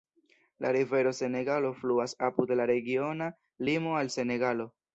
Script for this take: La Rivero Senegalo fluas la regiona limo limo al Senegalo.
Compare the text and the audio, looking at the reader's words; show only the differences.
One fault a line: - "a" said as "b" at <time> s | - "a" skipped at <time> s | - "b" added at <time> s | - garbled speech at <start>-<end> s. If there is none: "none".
- "apud" added at 2.3 s
- "limo" skipped at 4.0 s